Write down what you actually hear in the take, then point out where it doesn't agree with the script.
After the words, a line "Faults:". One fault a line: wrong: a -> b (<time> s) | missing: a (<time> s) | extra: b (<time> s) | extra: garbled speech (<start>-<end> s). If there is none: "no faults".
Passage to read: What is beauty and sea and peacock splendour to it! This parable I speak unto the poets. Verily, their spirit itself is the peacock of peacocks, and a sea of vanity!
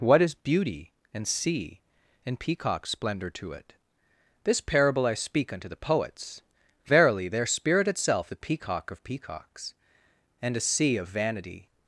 What is beauty and sea and peacock splendour to it! This parable I speak unto the poets. Verily, their spirit itself the peacock of peacocks, and a sea of vanity!
Faults:
missing: is (8.3 s)